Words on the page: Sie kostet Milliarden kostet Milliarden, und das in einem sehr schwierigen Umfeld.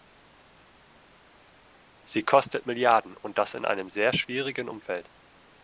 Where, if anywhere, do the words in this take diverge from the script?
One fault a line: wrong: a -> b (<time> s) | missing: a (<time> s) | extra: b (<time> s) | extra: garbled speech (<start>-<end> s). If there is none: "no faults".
missing: kostet Milliarden (3.1 s)